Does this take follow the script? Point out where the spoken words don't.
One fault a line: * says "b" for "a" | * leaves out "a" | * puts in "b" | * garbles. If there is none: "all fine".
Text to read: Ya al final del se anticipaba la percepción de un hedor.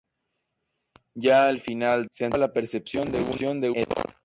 * leaves out "del"
* leaves out "un"